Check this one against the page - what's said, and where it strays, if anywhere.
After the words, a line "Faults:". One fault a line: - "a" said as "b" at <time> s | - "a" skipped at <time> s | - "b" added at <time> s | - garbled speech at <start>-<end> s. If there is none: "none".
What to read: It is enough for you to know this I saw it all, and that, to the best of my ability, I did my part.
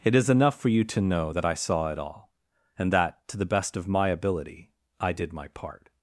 It is enough for you to know that I saw it all, and that, to the best of my ability, I did my part.
Faults:
- "this" said as "that" at 1.3 s